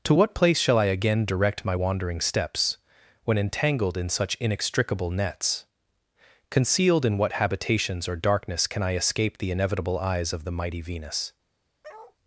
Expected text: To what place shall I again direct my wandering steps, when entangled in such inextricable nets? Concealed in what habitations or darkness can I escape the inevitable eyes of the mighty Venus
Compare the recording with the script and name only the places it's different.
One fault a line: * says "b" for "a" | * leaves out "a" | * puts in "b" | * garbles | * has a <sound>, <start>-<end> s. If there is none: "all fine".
* has a bark, 11.8-12.2 s